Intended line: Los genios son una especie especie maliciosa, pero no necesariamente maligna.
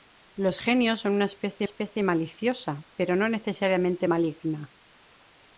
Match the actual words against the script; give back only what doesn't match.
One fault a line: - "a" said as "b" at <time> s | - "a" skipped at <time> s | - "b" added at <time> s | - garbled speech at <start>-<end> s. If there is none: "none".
none